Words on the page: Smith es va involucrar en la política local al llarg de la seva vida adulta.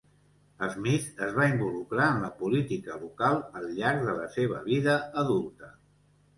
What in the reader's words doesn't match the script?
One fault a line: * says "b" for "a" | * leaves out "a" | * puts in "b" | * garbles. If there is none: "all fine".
all fine